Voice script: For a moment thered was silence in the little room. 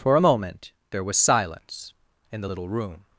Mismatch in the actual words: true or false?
true